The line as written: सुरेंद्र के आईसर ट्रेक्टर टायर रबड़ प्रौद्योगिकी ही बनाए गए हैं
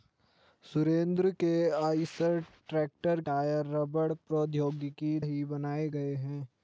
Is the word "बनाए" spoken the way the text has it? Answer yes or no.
yes